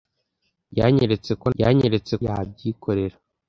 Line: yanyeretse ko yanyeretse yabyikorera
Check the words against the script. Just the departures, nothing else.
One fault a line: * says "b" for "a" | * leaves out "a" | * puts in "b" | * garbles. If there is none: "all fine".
all fine